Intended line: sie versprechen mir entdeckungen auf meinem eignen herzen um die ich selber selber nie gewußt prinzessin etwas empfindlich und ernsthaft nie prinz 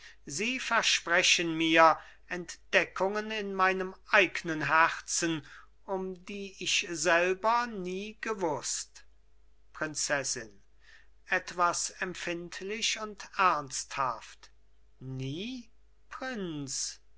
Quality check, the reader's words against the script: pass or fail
fail